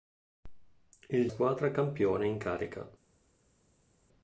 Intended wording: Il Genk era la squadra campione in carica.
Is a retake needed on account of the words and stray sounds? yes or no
yes